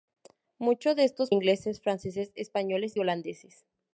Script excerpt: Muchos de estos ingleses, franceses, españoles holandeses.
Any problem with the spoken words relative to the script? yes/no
no